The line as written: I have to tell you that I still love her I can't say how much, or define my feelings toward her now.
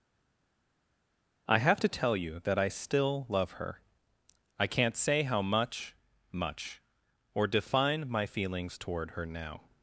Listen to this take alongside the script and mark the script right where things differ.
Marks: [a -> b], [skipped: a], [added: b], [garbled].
I have to tell you that I still love her I can't say how much, [added: much] or define my feelings toward her now.